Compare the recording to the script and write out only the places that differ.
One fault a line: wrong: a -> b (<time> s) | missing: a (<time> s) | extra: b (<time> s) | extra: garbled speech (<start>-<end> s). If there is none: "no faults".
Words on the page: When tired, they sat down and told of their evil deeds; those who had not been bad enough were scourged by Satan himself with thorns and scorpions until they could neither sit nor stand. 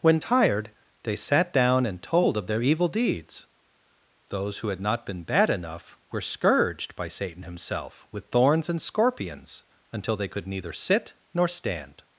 no faults